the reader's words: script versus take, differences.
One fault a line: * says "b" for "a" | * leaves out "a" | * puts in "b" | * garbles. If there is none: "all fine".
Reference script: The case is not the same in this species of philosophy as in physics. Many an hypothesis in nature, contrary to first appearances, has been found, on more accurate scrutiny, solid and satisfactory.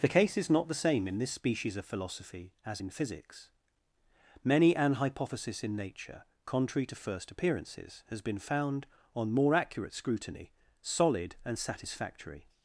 all fine